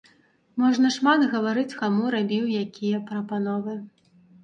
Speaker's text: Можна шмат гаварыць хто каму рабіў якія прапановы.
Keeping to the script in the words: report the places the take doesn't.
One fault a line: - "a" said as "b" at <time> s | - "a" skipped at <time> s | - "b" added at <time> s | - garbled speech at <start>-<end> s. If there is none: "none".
- "хто" skipped at 1.8 s